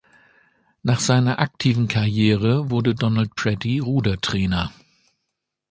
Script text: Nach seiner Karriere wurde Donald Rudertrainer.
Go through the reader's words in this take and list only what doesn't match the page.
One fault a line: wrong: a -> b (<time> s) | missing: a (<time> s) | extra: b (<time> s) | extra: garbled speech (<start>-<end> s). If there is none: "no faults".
extra: aktiven (1.4 s)
extra: Pretty (3.4 s)